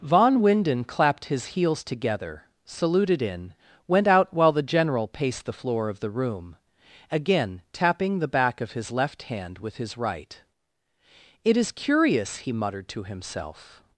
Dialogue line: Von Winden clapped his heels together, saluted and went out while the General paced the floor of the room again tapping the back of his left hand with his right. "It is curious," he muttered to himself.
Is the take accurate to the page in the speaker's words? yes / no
no